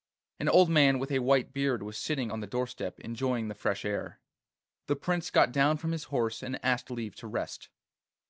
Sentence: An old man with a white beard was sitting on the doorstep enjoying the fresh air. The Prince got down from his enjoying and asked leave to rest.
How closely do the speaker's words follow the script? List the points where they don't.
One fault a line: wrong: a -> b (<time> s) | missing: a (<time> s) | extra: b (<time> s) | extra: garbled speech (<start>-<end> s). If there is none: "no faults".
wrong: enjoying -> horse (6.1 s)